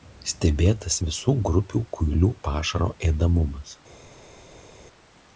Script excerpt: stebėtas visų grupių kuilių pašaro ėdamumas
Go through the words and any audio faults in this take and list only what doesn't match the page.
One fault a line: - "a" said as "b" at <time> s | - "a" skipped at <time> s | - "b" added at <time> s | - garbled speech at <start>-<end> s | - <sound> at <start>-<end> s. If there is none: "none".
none